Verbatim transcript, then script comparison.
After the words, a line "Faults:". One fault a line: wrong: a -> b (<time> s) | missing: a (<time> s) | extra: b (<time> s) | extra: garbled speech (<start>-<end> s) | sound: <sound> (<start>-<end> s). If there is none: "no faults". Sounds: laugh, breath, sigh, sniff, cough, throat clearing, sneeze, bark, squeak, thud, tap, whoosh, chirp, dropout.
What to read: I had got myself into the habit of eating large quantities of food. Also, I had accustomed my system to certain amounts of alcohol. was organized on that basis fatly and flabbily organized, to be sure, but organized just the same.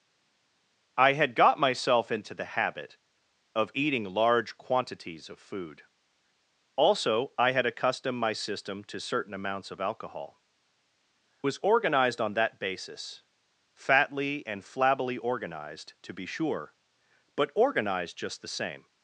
I had got myself into the habit of eating large quantities of food. Also, I had accustomed my system to certain amounts of alcohol. was organized on that basis fatly and flabbily organized, to be sure, but organized just the same.
Faults:
no faults